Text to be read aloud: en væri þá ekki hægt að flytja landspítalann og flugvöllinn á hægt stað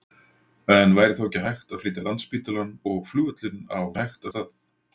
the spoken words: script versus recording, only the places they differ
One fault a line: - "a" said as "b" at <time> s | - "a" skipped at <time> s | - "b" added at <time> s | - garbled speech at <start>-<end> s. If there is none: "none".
none